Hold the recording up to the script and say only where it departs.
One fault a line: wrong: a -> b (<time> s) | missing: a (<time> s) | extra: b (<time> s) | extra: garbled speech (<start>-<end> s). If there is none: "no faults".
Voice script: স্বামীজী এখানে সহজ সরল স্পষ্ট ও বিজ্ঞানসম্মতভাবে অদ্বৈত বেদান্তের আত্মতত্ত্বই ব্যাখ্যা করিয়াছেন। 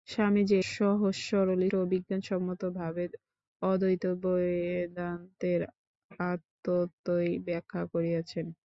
missing: এখানে (0.6 s)
missing: স্পষ্ট (1.6 s)